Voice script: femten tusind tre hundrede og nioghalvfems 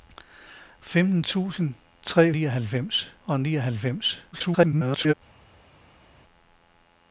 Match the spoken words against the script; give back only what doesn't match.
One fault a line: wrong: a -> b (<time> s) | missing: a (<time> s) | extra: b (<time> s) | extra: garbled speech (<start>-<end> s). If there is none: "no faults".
wrong: hundrede -> nioghalvfems (2.3 s)
extra: garbled speech (4.3-5.1 s)